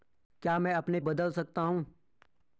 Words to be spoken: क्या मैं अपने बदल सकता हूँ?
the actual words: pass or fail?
pass